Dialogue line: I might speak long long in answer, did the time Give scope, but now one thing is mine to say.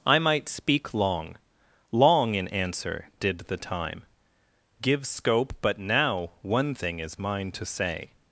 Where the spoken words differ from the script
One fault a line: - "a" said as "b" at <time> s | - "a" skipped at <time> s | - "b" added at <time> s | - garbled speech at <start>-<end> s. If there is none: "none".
none